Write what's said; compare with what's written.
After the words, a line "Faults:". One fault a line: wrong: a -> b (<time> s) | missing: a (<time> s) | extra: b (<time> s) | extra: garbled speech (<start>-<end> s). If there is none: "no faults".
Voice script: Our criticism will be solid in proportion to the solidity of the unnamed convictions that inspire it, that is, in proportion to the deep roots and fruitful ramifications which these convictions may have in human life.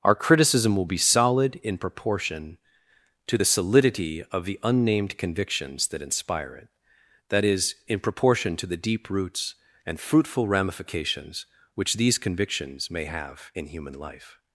Our criticism will be solid in proportion to the solidity of the unnamed convictions that inspire it, that is, in proportion to the deep roots and fruitful ramifications which these convictions may have in human life.
Faults:
no faults